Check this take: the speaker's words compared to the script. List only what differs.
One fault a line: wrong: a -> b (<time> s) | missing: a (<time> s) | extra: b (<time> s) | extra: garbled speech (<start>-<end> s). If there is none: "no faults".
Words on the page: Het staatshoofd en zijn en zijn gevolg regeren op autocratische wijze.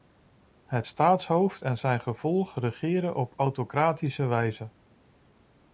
missing: en zijn (2.0 s)